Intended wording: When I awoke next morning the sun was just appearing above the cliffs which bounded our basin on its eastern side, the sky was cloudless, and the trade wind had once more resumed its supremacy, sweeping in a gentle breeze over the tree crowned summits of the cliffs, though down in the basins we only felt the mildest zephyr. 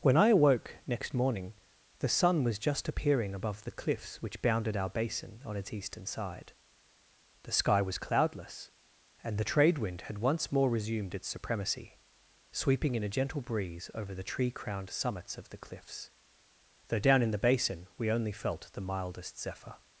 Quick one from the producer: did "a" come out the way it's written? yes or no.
yes